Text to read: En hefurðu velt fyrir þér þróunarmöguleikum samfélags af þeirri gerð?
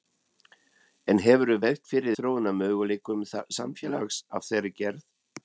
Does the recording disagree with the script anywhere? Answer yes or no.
yes